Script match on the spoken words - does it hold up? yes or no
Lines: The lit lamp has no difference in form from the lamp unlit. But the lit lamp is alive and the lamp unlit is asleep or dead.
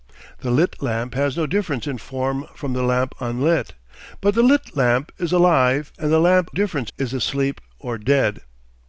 no